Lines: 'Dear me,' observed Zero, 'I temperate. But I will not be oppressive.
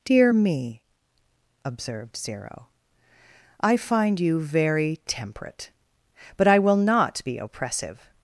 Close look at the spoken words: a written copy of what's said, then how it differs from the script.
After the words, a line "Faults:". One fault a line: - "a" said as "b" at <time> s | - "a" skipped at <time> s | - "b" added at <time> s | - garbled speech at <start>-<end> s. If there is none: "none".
'Dear me,' observed Zero, 'I find you very temperate. But I will not be oppressive.
Faults:
- "find you very" added at 3.8 s